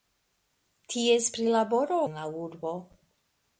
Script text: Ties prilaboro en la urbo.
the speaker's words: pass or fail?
pass